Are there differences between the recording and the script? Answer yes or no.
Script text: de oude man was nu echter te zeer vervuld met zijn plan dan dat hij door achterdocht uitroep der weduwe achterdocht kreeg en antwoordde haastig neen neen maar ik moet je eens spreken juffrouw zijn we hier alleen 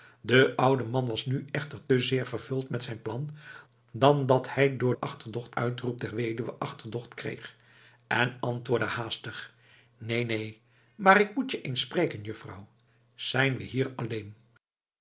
no